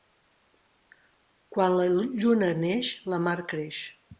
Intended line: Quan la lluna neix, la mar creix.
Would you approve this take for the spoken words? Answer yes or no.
yes